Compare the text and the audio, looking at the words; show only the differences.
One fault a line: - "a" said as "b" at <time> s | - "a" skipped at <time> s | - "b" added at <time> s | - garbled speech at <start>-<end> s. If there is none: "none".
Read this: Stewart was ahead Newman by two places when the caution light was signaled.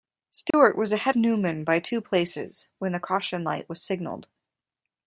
none